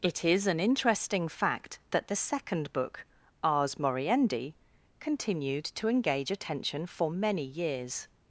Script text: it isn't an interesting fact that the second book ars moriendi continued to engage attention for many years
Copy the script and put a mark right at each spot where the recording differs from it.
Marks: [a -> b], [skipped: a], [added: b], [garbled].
it [isn't -> is] an interesting fact that the second book ars moriendi continued to engage attention for many years